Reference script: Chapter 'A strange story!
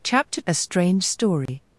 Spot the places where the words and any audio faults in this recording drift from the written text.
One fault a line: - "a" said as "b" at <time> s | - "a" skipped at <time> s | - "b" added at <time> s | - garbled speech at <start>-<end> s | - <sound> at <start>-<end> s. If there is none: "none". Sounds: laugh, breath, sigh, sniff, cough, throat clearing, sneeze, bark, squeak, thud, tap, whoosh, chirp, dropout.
- dropout at 1.5-1.5 s